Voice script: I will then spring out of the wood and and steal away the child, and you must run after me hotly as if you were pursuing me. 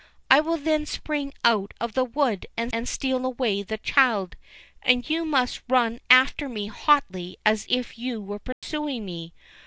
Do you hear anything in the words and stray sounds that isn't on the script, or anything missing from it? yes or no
yes